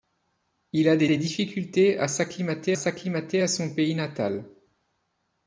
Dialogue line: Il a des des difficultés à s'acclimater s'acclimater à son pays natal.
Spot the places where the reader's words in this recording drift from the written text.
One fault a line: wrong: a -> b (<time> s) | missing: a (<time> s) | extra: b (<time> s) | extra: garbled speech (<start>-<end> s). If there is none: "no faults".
no faults